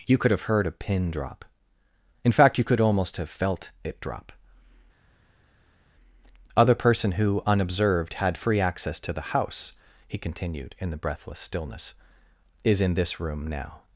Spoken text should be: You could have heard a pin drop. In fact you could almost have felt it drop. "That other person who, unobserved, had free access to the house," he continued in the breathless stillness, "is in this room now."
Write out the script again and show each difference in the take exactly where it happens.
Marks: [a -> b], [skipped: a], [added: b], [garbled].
You could have heard a pin drop. In fact you could almost have felt it drop. [skipped: "That] other person who, unobserved, had free access to the house," he continued in the breathless stillness, "is in this room now."